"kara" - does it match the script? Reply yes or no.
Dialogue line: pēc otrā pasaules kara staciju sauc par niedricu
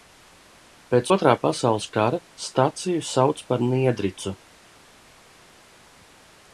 yes